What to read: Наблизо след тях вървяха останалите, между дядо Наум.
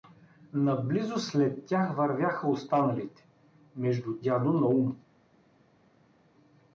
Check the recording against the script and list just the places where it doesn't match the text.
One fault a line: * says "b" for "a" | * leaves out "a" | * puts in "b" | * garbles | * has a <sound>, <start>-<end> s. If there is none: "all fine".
all fine